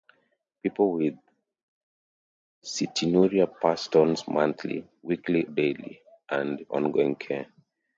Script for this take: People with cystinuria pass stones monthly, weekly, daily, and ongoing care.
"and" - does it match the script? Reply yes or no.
yes